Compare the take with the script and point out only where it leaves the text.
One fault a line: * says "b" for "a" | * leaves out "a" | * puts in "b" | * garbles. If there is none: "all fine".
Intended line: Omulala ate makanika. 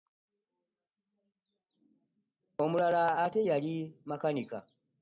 * puts in "yali"